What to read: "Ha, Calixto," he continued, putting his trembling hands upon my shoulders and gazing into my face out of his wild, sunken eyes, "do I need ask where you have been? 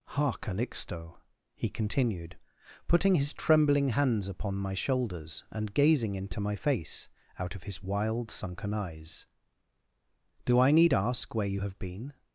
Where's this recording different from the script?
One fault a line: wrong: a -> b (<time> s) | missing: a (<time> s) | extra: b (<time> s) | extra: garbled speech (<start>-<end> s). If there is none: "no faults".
no faults